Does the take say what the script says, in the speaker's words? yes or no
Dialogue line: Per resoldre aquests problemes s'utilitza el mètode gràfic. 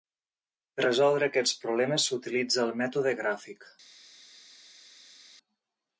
yes